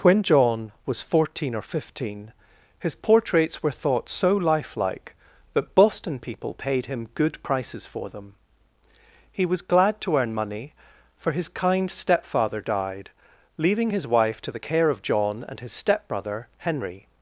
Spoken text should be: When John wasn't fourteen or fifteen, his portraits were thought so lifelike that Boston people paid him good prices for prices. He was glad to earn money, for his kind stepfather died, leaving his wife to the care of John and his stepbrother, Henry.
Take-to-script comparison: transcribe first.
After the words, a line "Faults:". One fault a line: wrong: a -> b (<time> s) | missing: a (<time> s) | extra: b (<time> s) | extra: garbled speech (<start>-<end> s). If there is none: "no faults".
When John was fourteen or fifteen, his portraits were thought so lifelike that Boston people paid him good prices for them. He was glad to earn money, for his kind stepfather died, leaving his wife to the care of John and his stepbrother, Henry.
Faults:
wrong: wasn't -> was (0.9 s)
wrong: prices -> them (8.1 s)